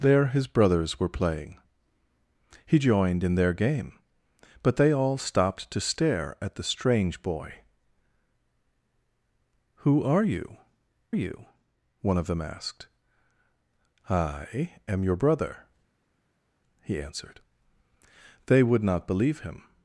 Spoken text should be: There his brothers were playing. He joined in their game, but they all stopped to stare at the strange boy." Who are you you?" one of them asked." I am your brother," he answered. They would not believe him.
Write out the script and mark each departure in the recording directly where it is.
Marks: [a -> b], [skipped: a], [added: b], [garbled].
There his brothers were playing. He joined in their game, but they all stopped to stare at the strange boy." Who are you you?" one of them asked." I am your brother," he answered. They would not believe him.